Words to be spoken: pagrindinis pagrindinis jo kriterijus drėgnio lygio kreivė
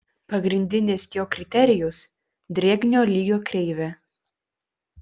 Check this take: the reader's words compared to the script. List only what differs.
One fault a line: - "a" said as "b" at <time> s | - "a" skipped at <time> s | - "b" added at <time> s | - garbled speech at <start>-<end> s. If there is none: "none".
- "pagrindinis" skipped at 1.1 s